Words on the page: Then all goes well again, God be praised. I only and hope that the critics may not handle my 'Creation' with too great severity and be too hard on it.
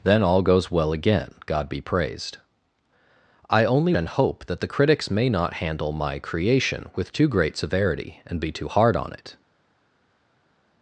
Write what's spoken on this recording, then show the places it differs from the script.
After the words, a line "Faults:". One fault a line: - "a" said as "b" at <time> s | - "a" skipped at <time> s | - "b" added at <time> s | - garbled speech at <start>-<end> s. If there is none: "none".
Then all goes well again, God be praised. I only and hope that the critics may not handle my 'Creation' with too great severity and be too hard on it.
Faults:
none